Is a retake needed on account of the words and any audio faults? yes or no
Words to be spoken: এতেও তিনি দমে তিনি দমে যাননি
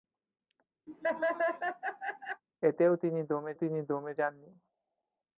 yes